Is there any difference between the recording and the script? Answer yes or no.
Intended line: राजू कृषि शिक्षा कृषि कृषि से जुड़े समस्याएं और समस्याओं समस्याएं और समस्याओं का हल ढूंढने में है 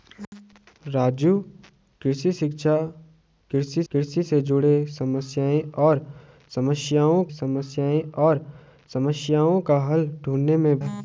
no